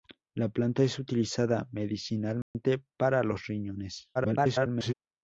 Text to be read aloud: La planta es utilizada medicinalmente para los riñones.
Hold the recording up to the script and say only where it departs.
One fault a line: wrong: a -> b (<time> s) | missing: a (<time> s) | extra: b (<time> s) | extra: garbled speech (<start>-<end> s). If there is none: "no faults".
extra: garbled speech (4.1-4.9 s)